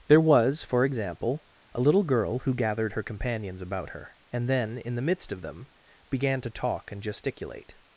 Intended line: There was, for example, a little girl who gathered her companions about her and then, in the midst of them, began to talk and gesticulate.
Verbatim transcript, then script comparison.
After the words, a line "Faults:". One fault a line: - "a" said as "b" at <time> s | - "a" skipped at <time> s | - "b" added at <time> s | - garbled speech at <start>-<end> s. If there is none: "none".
There was, for example, a little girl who gathered her companions about her and then, in the midst of them, began to talk and gesticulate.
Faults:
none